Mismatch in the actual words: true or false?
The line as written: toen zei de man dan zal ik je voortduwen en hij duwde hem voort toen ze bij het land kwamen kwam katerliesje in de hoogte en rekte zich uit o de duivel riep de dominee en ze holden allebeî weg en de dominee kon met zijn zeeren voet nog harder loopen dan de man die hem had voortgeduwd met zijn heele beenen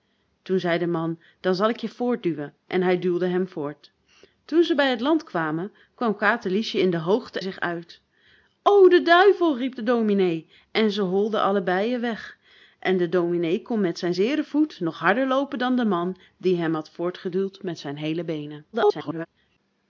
true